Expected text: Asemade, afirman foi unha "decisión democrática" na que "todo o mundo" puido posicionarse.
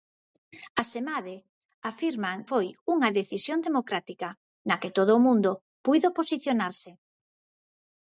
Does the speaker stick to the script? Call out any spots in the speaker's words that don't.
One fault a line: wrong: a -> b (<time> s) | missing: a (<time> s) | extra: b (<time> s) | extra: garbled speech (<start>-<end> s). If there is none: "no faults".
no faults